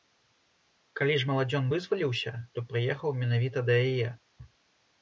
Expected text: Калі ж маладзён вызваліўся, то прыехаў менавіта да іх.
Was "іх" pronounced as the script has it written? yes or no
no